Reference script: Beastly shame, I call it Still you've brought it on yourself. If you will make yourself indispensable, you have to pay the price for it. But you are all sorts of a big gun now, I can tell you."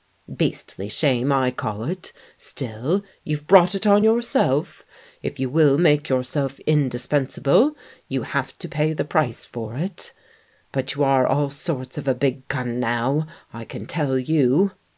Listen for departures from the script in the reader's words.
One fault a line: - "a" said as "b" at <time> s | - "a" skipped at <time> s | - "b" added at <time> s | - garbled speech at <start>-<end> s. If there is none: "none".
none